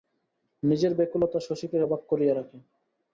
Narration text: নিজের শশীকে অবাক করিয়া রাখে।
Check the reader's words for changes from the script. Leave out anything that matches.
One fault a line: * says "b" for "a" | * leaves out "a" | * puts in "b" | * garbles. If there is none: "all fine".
* puts in "ব্যাকুলতা"